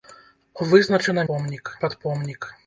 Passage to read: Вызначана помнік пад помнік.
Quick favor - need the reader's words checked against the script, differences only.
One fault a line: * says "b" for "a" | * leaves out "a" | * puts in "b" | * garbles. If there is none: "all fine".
all fine